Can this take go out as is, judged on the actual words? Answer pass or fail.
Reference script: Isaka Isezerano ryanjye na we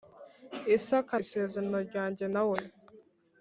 pass